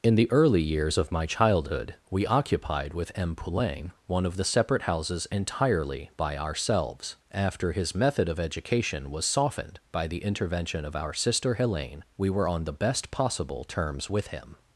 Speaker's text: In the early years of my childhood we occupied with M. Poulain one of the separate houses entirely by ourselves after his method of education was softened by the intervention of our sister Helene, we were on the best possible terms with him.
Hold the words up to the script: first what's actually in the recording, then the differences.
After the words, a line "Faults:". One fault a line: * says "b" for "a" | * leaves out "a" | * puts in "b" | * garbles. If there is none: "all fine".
In the early years of my childhood we occupied with M. Poulain one of the separate houses entirely by ourselves after his method of education was softened by the intervention of our sister Helene, we were on the best possible terms with him.
Faults:
all fine